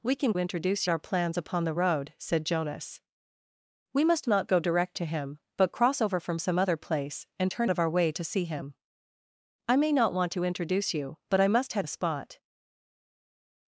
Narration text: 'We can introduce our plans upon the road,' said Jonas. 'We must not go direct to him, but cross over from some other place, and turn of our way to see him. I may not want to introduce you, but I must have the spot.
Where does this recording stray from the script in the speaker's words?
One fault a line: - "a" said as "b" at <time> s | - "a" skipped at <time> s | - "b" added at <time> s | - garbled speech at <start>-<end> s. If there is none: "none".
none